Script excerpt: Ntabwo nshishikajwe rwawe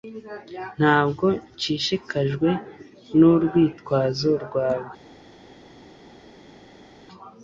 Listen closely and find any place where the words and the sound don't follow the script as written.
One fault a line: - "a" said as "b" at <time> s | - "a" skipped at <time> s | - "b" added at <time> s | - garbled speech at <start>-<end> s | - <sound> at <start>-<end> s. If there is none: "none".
- "nurwitwazo" added at 3.2 s